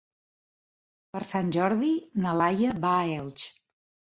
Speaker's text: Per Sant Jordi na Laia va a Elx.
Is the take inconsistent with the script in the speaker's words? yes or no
no